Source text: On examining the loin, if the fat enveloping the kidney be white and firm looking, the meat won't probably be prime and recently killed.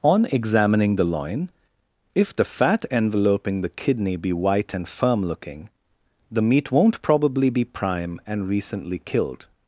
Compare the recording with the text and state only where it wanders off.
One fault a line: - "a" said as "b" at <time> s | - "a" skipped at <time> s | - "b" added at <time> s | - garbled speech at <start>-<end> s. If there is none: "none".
none